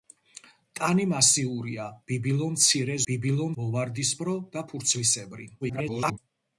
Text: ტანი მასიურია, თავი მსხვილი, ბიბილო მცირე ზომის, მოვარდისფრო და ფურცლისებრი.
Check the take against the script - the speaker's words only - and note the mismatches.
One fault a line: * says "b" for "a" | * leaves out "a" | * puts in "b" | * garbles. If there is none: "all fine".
* leaves out "თავი მსხვილი"
* says "ბიბილო" for "ზომის"
* garbles